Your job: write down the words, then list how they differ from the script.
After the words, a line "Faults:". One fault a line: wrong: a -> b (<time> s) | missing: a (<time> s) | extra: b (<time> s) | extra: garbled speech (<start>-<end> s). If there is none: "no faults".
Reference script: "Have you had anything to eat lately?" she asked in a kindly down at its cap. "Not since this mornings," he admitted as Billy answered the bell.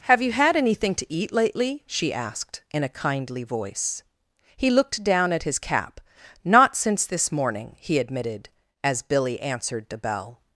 "Have you had anything to eat lately?" she asked in a kindly voice. He looked down at his cap. "Not since this morning," he admitted as Billy answered the bell.
Faults:
extra: voice He looked (3.4 s)
wrong: its -> his (5.4 s)
wrong: mornings -> morning (7.3 s)